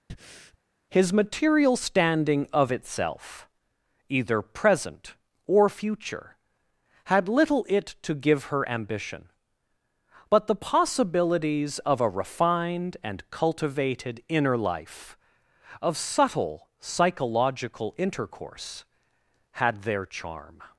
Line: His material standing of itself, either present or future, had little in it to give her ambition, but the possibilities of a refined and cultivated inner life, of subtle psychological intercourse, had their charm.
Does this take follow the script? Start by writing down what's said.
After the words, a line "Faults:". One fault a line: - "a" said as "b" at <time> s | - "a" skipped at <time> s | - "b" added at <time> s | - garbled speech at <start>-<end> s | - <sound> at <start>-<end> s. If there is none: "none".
His material standing of itself, either present or future, had little it to give her ambition, but the possibilities of a refined and cultivated inner life, of subtle psychological intercourse, had their charm.
Faults:
- breath at 0.1-0.6 s
- "in" skipped at 7.6 s